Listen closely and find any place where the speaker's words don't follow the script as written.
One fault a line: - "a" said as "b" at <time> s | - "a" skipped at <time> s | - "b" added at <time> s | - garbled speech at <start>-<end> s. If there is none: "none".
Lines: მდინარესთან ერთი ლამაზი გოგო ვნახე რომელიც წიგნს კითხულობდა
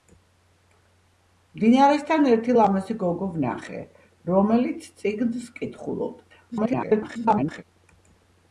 - garbled speech at 6.5-7.6 s